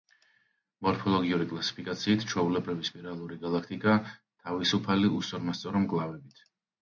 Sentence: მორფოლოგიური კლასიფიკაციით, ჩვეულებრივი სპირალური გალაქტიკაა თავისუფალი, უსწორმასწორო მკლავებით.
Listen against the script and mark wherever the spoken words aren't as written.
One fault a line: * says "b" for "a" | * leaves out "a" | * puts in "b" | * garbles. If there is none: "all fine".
all fine